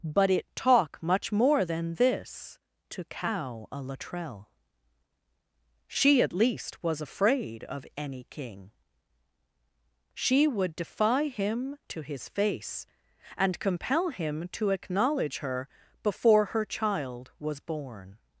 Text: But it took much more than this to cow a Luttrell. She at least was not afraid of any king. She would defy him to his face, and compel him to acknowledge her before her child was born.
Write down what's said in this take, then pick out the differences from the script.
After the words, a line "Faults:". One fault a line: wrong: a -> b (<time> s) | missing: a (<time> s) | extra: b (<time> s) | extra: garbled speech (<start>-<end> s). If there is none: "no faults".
But it talk much more than this to cow a Luttrell. She at least was afraid of any king. She would defy him to his face, and compel him to acknowledge her before her child was born.
Faults:
wrong: took -> talk (0.6 s)
missing: not (7.0 s)